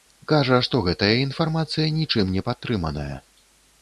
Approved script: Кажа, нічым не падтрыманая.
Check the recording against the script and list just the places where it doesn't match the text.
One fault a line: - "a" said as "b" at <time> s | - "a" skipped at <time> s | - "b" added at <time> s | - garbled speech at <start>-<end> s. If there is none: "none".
- "што гэтая інфармацыя" added at 0.7 s